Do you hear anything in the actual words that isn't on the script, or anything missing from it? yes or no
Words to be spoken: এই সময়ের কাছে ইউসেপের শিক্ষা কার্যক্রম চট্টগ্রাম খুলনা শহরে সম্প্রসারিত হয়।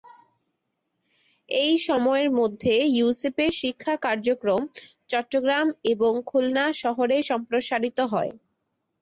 yes